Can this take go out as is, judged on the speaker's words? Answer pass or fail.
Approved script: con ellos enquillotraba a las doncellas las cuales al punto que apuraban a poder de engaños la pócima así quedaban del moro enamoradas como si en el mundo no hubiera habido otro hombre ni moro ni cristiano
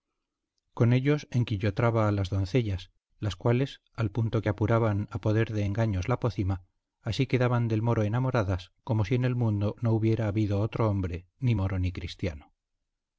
pass